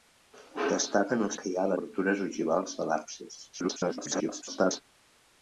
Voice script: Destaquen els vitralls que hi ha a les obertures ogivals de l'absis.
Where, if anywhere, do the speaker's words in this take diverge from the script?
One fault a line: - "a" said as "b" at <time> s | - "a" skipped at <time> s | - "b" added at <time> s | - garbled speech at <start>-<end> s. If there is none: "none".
- "vitralls" skipped at 1.4 s
- "les" skipped at 1.7 s
- garbled speech at 3.5-4.8 s